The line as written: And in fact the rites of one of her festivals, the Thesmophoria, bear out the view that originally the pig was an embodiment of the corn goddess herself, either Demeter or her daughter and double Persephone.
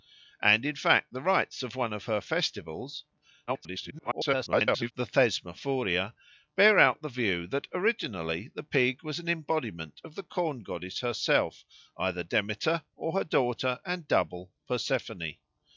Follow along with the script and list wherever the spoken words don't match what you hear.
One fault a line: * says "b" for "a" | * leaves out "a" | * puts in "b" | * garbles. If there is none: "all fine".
* garbles